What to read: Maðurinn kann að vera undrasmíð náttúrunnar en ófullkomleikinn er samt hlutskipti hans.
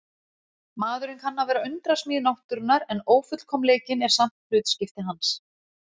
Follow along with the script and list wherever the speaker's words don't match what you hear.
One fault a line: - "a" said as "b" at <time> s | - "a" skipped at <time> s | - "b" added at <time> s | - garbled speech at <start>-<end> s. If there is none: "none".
none